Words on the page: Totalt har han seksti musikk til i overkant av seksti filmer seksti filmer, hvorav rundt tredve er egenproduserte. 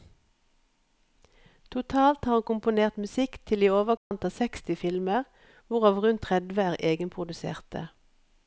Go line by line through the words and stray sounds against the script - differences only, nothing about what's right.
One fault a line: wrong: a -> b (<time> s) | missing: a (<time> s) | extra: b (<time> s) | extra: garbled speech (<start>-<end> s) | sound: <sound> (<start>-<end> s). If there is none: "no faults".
wrong: seksti -> komponert (2.5 s)
sound: dropout (4.0-4.1 s)
missing: seksti filmer (5.3 s)